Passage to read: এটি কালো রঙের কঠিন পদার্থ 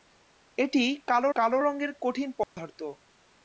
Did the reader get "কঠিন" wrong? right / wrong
right